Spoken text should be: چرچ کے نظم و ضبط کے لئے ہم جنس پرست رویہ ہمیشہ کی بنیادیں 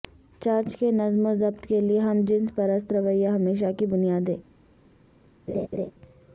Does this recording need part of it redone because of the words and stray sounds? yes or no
yes